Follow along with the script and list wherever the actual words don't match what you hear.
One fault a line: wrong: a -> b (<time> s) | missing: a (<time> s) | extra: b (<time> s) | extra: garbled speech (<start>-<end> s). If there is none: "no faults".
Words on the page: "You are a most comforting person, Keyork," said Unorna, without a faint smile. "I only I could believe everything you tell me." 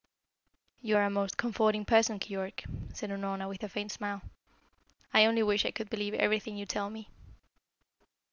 wrong: without -> with (3.5 s)
extra: wish (5.4 s)